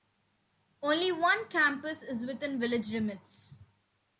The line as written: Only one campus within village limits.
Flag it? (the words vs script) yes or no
yes